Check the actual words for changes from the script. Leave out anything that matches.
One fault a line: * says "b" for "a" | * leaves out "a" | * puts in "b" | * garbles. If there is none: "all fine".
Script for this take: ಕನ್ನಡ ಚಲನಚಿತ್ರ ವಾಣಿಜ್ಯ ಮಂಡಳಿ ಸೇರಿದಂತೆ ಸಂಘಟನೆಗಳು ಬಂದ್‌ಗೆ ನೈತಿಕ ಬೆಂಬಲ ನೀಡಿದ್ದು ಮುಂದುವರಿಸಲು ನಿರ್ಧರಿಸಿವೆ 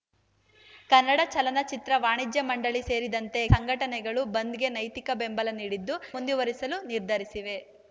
all fine